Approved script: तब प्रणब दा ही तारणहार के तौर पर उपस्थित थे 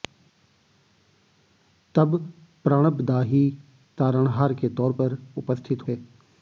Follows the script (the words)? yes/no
yes